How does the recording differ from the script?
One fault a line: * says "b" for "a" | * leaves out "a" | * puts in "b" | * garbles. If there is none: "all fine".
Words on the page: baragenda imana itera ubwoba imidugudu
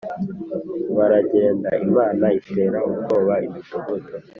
all fine